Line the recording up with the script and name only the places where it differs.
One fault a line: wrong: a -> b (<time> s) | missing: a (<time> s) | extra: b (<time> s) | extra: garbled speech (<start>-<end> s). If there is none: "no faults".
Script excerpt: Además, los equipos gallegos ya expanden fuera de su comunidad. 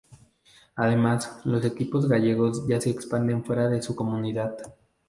extra: se (2.8 s)